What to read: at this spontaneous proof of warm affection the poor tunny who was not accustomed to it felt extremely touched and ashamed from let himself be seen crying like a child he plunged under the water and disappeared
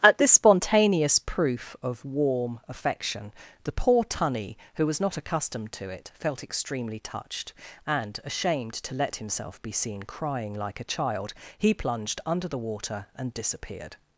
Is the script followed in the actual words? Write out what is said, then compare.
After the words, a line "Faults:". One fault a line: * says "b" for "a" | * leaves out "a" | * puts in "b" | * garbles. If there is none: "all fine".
at this spontaneous proof of warm affection the poor tunny who was not accustomed to it felt extremely touched and ashamed to let himself be seen crying like a child he plunged under the water and disappeared
Faults:
* says "to" for "from"